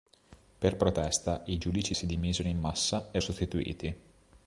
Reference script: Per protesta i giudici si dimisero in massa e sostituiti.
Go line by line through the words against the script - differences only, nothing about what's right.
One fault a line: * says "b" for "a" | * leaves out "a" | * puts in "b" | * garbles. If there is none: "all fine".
all fine